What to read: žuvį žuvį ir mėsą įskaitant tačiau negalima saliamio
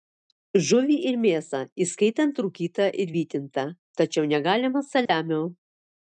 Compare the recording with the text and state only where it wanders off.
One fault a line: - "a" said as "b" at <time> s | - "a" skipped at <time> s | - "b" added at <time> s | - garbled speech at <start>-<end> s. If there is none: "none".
- "žuvį" skipped at 0.9 s
- "rūkytą ir vytintą" added at 2.5 s